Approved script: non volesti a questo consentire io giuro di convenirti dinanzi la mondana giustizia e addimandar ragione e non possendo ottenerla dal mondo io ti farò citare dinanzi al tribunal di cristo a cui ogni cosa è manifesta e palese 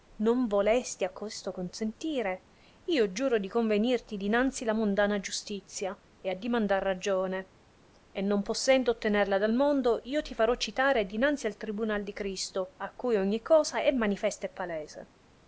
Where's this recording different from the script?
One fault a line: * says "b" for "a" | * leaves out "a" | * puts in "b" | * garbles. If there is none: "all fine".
all fine